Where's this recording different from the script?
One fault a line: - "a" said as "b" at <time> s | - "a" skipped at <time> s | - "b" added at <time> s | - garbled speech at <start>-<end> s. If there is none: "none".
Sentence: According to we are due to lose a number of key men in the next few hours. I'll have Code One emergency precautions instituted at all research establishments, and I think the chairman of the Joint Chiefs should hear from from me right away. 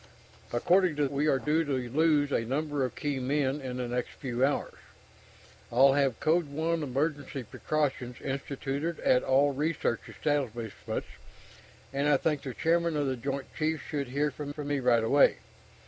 none